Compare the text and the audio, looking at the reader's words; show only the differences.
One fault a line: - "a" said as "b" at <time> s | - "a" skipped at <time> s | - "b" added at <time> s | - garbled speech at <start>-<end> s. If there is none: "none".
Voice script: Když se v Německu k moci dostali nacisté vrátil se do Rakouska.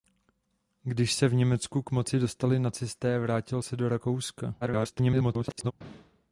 - garbled speech at 4.6-5.7 s